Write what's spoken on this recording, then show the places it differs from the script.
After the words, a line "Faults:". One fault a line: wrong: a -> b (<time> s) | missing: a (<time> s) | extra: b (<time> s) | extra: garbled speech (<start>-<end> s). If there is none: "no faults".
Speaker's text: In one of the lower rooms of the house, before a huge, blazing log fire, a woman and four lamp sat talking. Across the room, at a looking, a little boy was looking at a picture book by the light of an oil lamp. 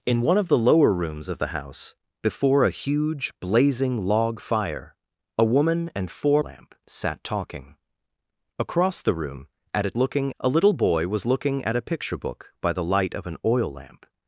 In one of the lower rooms of the house, before a huge, blazing log fire, a woman and four lamp sat talking. Across the room, at a looking, a little boy was looking at a picture book by the light of an oil lamp.
Faults:
no faults